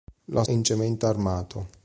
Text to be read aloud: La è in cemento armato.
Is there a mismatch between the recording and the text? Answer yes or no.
no